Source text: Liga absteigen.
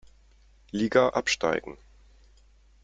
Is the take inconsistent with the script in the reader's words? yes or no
no